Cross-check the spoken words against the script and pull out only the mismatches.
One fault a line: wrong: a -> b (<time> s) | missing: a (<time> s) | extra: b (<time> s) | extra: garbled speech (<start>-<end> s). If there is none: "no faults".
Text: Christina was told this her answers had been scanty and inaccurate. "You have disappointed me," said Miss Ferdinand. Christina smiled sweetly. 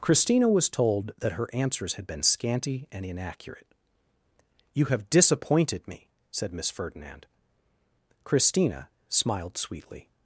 wrong: this -> that (1.2 s)